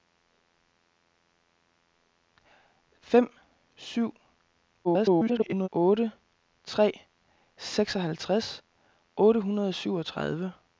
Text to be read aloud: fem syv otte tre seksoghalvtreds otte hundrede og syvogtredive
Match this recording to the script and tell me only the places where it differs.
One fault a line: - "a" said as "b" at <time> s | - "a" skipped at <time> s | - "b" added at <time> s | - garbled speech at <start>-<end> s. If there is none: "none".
- garbled speech at 4.8-5.7 s